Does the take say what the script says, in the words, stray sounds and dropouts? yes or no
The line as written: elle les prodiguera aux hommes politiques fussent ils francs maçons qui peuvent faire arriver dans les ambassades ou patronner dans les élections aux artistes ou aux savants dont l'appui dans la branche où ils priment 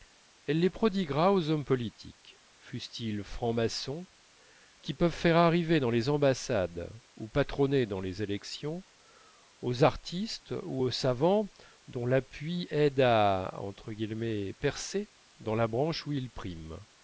no